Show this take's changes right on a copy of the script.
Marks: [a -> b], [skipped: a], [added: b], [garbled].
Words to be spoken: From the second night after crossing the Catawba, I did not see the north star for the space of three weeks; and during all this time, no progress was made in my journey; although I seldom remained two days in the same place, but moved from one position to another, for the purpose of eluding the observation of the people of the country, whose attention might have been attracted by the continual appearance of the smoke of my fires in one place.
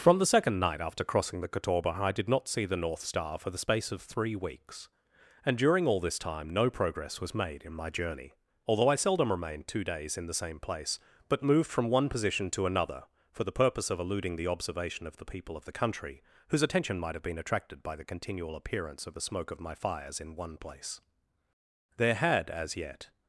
From the second night after crossing the Catawba, I did not see the north star for the space of three weeks; and during all this time, no progress was made in my journey; although I seldom remained two days in the same place, but moved from one position to another, for the purpose of eluding the observation of the people of the country, whose attention might have been attracted by the continual appearance of the smoke of my fires in one place. [added: There had as yet]